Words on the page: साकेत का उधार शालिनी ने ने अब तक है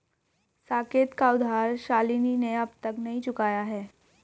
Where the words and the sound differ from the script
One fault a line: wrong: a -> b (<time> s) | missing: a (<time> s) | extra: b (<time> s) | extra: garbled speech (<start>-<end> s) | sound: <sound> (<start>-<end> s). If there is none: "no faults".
missing: ने (2.5 s)
extra: नहीं चुकाया (3.0 s)